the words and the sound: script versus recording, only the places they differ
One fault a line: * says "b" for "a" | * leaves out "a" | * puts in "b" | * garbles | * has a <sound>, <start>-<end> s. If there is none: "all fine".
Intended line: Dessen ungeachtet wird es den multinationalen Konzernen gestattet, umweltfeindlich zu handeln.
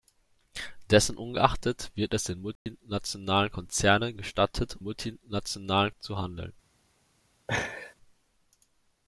* has a dropout, 2.6-2.7 s
* says "multinationalen" for "umweltfeindlich"
* has a laugh, 7.5-7.9 s